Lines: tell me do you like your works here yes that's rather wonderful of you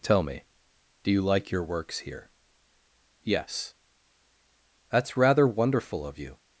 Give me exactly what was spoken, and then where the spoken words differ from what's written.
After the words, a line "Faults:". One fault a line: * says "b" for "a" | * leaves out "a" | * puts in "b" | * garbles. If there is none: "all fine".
tell me do you like your works here yes that's rather wonderful of you
Faults:
all fine